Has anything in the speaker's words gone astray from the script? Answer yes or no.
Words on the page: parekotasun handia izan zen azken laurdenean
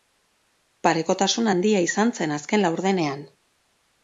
no